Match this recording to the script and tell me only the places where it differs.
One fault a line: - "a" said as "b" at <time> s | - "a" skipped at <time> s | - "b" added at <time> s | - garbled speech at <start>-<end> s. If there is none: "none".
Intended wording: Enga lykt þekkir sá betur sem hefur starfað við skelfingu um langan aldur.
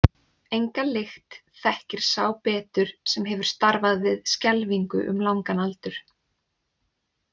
none